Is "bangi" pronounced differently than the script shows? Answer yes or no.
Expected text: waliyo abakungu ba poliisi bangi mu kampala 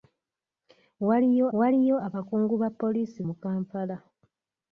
yes